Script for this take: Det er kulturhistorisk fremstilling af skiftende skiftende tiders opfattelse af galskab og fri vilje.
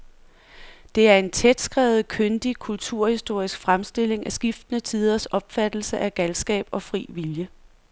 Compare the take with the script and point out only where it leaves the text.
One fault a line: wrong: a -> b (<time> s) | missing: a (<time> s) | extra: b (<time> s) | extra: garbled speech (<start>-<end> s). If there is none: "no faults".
extra: en tætskrevet kyndig (1.2 s)
missing: skiftende (4.8 s)